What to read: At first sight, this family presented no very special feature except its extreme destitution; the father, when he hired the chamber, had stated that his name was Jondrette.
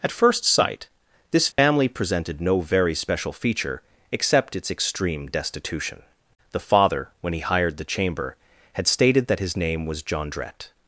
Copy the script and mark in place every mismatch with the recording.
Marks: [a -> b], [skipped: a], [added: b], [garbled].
At first sight, this family presented no very special feature except its extreme destitution; the father, when he hired the chamber, had stated that his name was Jondrette.